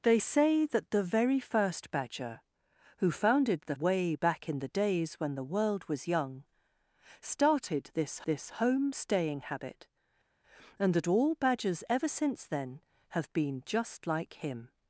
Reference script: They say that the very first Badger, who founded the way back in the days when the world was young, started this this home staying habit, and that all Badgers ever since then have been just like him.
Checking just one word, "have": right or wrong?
right